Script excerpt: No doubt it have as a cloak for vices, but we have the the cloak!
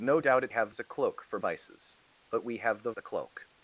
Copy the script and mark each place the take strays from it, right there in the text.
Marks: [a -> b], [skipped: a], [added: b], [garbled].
No doubt it have as a cloak for vices, but we have the the cloak!